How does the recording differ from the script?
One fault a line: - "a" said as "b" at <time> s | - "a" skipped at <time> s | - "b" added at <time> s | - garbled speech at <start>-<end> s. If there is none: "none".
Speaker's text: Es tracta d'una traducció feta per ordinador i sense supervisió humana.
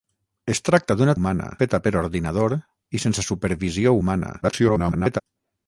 - "traducció" said as "humana" at 1.2 s
- garbled speech at 4.4-5.2 s